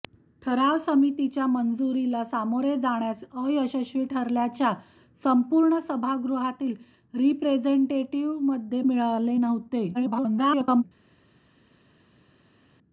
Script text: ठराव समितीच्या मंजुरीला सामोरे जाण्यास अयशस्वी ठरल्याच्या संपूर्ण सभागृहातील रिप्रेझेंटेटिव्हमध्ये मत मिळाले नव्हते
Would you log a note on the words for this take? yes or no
yes